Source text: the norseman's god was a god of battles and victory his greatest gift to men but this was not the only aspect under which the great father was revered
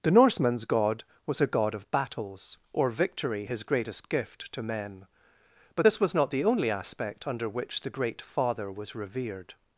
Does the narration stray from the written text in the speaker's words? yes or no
yes